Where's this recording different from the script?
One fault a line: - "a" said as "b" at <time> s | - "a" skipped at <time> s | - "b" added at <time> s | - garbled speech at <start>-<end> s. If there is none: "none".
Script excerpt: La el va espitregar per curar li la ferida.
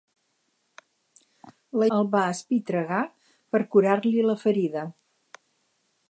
none